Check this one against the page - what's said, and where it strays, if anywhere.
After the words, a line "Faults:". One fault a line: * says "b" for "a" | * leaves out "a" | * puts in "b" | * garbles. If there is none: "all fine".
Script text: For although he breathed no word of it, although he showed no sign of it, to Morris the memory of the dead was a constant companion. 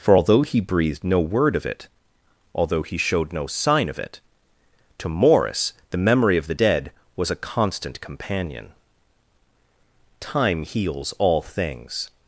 For although he breathed no word of it, although he showed no sign of it, to Morris the memory of the dead was a constant companion. Time heals all things
Faults:
* puts in "Time heals all things"